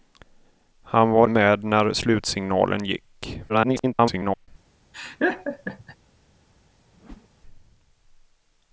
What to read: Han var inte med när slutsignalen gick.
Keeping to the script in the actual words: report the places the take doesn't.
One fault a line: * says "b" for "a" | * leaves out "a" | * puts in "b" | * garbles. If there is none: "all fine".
* leaves out "inte"
* garbles